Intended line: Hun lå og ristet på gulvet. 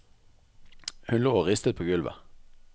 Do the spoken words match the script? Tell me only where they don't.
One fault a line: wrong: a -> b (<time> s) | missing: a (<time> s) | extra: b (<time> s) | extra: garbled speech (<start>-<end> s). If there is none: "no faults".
no faults